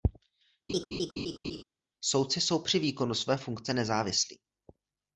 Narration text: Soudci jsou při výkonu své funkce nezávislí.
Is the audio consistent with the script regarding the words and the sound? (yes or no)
no